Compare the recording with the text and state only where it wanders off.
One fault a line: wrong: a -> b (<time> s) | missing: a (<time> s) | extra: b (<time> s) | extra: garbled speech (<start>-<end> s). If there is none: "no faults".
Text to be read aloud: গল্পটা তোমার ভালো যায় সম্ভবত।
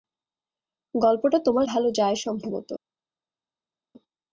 no faults